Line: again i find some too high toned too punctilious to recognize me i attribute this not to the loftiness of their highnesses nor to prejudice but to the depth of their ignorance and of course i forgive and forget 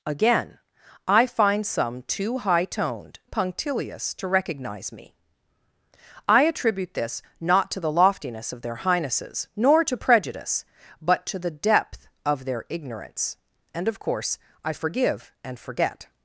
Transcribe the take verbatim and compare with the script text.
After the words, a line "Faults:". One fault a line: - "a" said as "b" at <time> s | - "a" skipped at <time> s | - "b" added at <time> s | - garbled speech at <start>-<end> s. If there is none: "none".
again i find some too high toned punctilious to recognize me i attribute this not to the loftiness of their highnesses nor to prejudice but to the depth of their ignorance and of course i forgive and forget
Faults:
- "too" skipped at 3.2 s